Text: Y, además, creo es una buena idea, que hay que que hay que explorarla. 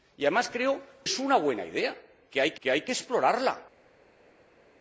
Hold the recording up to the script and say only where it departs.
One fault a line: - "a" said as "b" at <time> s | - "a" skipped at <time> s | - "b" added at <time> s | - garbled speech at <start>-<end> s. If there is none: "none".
none